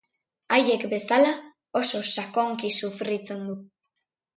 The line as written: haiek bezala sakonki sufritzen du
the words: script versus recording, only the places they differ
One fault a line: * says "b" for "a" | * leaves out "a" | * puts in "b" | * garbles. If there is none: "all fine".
* puts in "oso"